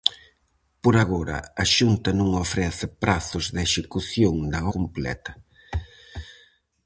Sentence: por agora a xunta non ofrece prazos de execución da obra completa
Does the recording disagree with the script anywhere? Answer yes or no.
yes